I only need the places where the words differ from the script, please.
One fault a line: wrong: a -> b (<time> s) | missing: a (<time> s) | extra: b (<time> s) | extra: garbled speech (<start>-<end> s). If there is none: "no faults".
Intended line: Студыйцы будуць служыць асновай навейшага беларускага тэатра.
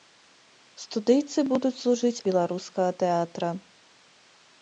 missing: асновай навейшага (2.2 s)